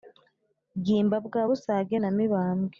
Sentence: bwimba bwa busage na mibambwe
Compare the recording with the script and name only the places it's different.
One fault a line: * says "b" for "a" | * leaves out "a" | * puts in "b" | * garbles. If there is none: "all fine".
all fine